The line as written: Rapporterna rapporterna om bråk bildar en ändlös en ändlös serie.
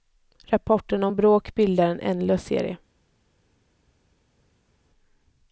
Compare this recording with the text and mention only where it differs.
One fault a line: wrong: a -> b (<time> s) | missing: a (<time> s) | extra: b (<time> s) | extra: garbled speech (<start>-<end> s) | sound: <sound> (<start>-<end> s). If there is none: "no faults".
missing: rapporterna (1.1 s)
missing: en ändlös (2.5 s)